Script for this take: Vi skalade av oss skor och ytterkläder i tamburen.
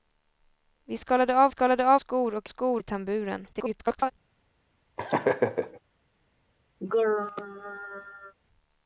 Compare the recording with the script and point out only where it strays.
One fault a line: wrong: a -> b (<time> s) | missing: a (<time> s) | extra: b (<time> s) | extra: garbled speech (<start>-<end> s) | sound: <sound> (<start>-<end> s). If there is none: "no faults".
wrong: oss -> skalade (1.5 s)
wrong: ytterkläder -> skor (2.5 s)
extra: garbled speech (3.5-4.1 s)
sound: laugh (5.0-5.8 s)
sound: throat clearing (6.8-8.3 s)